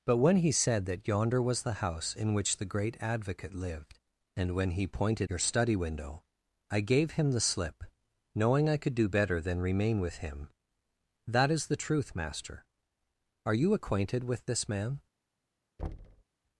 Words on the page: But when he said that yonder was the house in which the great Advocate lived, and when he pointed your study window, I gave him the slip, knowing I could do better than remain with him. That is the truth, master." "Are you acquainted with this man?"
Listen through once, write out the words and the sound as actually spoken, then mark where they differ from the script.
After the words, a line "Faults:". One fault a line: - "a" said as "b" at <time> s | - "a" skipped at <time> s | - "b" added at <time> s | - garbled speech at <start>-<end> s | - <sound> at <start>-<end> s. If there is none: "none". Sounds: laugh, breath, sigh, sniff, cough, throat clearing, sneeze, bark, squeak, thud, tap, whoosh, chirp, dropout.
But when he said that yonder was the house in which the great Advocate lived, and when he pointed your study window, I gave him the slip, knowing I could do better than remain with him. That is the truth, master." "Are you acquainted with this man?"
Faults:
- thud at 15.8-16.2 s